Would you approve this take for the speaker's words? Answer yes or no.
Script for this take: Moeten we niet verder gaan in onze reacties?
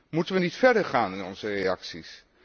yes